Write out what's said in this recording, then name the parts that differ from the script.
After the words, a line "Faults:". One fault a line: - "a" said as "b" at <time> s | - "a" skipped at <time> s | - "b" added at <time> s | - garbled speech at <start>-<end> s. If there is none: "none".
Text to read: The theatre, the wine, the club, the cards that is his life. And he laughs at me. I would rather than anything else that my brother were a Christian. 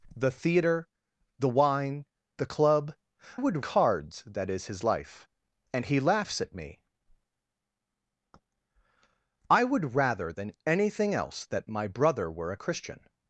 The theatre, the wine, the club, would cards that is his life. And he laughs at me. I would rather than anything else that my brother were a Christian.
Faults:
- "the" said as "would" at 3.3 s